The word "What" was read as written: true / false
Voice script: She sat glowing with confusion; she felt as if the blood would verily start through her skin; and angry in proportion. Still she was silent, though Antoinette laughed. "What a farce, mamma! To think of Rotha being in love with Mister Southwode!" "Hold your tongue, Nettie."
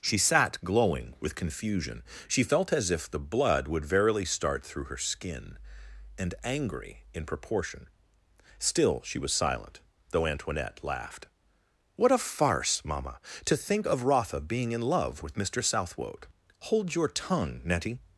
true